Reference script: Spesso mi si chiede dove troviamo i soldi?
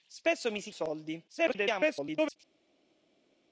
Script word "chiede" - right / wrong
wrong